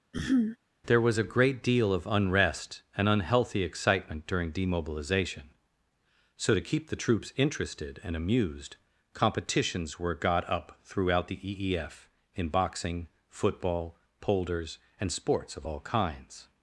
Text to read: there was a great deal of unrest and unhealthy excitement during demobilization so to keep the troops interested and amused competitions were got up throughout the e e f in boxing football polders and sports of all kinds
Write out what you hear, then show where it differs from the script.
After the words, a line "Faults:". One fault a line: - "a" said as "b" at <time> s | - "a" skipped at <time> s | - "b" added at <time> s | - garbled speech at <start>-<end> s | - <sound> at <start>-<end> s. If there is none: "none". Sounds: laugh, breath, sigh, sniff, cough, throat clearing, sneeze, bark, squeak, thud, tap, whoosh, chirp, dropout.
there was a great deal of unrest and unhealthy excitement during demobilization so to keep the troops interested and amused competitions were got up throughout the e e f in boxing football polders and sports of all kinds
Faults:
- throat clearing at 0.1-0.6 s